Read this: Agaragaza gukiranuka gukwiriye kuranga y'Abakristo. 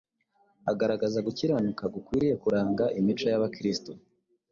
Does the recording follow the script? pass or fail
fail